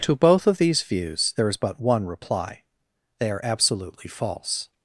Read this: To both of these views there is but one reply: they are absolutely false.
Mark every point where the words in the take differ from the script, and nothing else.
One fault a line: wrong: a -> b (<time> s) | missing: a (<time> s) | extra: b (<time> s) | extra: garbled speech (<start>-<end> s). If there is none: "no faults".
no faults